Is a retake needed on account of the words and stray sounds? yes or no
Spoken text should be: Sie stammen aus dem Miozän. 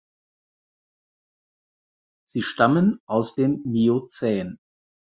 no